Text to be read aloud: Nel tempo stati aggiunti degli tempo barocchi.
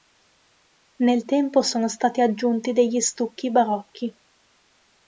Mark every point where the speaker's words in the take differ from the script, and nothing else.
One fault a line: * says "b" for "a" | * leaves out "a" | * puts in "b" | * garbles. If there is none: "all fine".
* puts in "sono"
* says "stucchi" for "tempo"